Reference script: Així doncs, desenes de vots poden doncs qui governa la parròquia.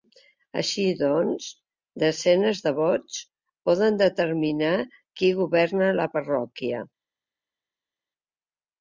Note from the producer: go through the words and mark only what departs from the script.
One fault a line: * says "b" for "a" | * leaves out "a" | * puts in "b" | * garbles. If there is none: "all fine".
* says "determinar" for "doncs"